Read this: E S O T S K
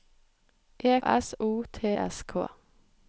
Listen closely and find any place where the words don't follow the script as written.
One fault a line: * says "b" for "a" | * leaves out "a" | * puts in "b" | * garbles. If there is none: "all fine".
all fine